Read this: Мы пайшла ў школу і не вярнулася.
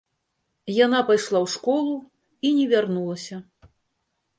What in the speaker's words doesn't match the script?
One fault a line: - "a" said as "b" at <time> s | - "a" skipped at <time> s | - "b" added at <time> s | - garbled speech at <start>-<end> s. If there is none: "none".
- "Мы" said as "Яна" at 0.8 s